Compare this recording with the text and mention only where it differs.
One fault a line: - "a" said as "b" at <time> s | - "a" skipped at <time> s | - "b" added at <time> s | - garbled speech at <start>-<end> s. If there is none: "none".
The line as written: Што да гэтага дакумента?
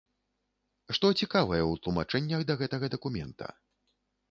- "цікавае ў тлумачэннях" added at 1.2 s